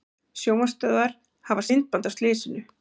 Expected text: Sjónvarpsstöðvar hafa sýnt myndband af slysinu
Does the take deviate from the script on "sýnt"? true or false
true